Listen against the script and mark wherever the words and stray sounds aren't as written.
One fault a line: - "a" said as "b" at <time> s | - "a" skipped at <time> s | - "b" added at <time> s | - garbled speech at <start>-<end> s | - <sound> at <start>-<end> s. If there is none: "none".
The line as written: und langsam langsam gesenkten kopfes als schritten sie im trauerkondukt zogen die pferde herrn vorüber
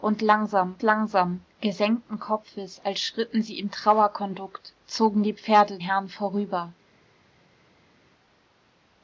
none